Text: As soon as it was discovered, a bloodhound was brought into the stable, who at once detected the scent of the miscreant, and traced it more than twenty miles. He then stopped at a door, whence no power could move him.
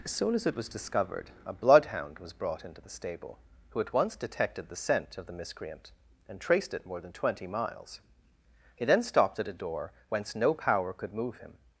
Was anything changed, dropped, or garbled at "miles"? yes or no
no